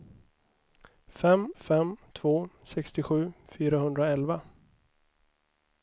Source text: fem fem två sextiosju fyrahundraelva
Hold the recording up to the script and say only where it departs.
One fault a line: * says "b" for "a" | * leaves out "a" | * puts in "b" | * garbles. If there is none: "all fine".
all fine